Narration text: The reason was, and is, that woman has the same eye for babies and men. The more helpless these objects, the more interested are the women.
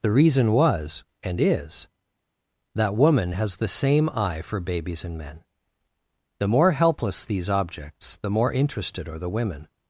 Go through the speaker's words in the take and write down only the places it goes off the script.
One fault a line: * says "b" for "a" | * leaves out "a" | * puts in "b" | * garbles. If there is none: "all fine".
all fine